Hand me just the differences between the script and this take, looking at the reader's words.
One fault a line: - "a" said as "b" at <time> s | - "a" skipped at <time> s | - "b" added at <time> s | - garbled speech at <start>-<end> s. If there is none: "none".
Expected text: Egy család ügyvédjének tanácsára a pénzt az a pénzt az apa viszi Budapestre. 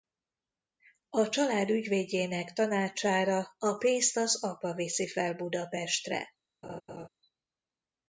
- "Egy" said as "A" at 1.1 s
- "a pénzt az" skipped at 4.4 s
- "fel" added at 5.1 s